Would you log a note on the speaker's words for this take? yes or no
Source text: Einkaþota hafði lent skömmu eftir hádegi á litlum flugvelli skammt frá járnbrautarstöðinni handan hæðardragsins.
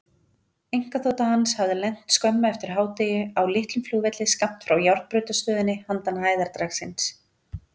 yes